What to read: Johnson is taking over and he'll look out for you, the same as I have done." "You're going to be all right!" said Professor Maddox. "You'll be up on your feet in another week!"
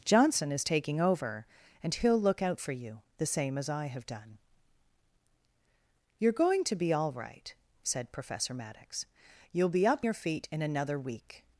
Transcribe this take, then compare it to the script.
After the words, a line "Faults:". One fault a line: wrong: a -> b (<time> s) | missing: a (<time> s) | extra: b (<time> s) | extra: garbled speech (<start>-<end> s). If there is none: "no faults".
Johnson is taking over and he'll look out for you, the same as I have done." "You're going to be all right!" said Professor Maddox. "You'll be up your feet in another week!"
Faults:
missing: on (10.1 s)